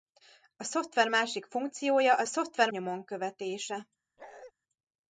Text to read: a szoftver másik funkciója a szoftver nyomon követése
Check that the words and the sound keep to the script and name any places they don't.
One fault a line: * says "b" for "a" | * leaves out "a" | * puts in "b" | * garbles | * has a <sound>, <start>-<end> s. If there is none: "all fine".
* has a bark, 4.2-4.5 s